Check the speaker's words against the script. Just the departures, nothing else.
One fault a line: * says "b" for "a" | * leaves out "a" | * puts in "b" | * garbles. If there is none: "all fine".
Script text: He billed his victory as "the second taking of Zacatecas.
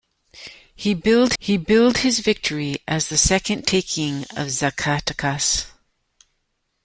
* puts in "he billed"